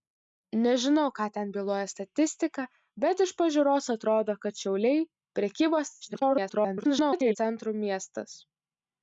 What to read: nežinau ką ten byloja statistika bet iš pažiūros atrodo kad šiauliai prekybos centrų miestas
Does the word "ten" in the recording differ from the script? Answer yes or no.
no